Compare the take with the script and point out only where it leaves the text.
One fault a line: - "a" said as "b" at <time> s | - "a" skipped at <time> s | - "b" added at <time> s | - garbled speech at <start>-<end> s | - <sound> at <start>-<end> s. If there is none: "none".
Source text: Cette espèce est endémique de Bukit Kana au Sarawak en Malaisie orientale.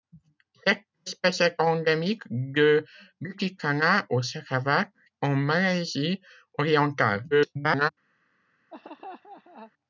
- garbled speech at 7.3-7.9 s
- laugh at 8.7-9.7 s